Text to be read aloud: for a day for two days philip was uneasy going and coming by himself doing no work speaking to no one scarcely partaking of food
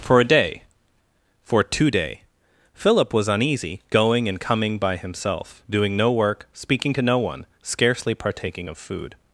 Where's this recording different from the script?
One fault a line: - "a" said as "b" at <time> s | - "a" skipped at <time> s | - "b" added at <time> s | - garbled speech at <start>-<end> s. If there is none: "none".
- "days" said as "day" at 1.9 s